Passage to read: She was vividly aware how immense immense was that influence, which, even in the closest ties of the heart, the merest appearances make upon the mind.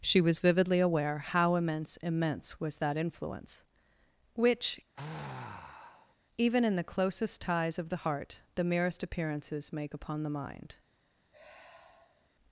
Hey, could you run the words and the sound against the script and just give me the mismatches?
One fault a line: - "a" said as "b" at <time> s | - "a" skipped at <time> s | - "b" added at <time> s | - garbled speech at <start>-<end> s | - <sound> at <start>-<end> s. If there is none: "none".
- sigh at 5.0-6.2 s
- sigh at 11.3-12.3 s